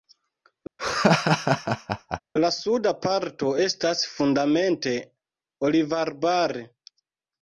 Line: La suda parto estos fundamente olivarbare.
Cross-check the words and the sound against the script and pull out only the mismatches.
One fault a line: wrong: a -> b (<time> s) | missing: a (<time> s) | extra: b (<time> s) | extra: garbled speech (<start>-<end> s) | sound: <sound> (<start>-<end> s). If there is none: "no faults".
sound: laugh (0.8-2.2 s)
wrong: estos -> estas (3.7 s)